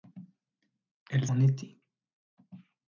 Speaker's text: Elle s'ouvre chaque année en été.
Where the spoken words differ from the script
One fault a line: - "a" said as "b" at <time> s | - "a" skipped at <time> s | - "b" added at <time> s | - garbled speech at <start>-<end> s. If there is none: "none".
- "s'ouvre chaque année" skipped at 1.3 s